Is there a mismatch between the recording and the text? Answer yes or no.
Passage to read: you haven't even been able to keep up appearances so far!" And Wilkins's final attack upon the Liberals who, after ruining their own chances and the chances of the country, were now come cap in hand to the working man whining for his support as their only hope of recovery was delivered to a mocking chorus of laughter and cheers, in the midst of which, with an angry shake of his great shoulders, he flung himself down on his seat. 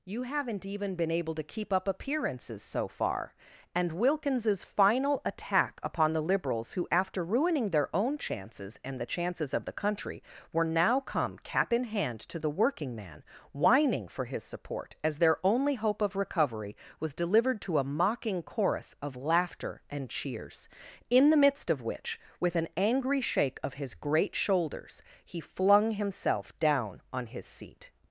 no